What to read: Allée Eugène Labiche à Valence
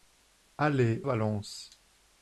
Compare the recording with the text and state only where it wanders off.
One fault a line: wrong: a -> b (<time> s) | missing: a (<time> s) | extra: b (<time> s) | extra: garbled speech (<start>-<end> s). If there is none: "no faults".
missing: Eugène Labiche à (1.0 s)